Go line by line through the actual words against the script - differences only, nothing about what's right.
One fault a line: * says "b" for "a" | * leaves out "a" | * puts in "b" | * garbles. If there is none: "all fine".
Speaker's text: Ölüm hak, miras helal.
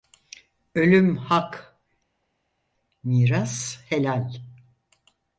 all fine